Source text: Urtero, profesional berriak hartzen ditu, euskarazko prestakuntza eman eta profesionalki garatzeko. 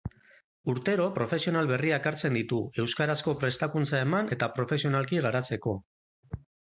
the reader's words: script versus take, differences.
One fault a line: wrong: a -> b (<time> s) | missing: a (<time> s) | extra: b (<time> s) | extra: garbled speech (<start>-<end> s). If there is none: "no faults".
no faults